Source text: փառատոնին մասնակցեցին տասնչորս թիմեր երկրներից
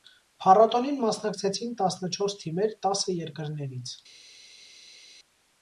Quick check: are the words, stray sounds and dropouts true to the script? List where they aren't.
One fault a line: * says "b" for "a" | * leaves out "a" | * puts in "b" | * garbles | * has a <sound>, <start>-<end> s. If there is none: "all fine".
* puts in "տասը"